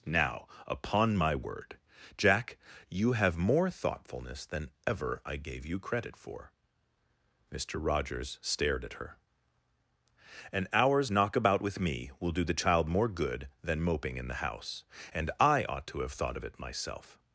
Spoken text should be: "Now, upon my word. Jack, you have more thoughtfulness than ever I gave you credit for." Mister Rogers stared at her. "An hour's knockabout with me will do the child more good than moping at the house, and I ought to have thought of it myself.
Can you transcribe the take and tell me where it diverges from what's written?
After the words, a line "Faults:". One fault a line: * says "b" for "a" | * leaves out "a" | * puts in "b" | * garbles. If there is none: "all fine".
"Now, upon my word. Jack, you have more thoughtfulness than ever I gave you credit for." Mister Rogers stared at her. "An hour's knockabout with me will do the child more good than moping in the house, and I ought to have thought of it myself.
Faults:
* says "in" for "at"